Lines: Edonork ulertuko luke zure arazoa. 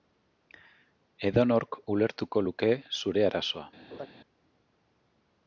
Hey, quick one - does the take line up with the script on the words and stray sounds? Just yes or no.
no